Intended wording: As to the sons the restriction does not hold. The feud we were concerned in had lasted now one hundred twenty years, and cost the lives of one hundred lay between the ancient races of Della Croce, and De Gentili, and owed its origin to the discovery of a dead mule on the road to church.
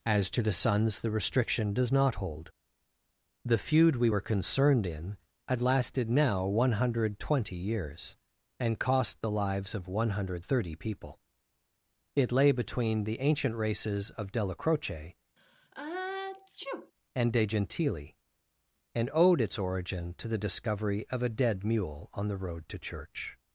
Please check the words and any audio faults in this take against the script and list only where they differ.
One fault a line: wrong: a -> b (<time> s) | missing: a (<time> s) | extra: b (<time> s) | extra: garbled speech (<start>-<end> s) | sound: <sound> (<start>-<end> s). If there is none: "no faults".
extra: thirty people It (10.4 s)
sound: sneeze (15.4-16.9 s)